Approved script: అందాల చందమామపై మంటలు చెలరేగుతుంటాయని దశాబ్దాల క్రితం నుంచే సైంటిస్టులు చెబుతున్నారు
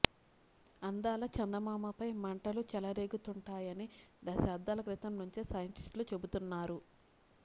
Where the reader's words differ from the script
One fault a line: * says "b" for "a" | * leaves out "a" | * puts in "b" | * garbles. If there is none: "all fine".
all fine